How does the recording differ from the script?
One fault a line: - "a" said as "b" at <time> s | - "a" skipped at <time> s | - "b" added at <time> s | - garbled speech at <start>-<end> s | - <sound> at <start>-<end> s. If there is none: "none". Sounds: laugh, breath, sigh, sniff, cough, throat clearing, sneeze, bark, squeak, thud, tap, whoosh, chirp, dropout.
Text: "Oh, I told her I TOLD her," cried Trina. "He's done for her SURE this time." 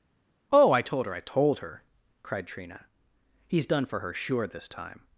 none